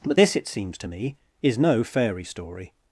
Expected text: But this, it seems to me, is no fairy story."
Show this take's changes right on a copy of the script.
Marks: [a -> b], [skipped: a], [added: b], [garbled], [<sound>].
But this, it seems to me, is no fairy story."